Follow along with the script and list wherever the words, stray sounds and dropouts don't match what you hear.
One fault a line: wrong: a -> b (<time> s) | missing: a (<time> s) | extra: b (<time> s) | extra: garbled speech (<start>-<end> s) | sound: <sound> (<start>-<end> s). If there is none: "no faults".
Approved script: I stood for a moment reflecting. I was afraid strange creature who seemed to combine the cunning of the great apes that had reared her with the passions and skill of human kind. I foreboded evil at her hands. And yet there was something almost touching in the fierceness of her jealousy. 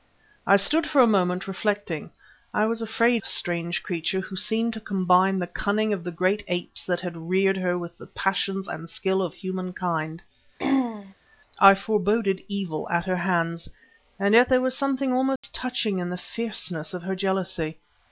sound: throat clearing (10.6-11.1 s)
sound: dropout (15.4-15.4 s)